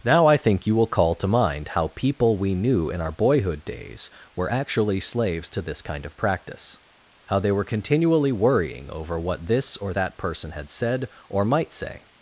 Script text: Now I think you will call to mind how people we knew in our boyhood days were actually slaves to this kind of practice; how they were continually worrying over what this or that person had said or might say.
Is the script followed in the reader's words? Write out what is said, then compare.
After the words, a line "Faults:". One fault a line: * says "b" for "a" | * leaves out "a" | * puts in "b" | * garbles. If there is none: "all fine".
Now I think you will call to mind how people we knew in our boyhood days were actually slaves to this kind of practice; how they were continually worrying over what this or that person had said or might say.
Faults:
all fine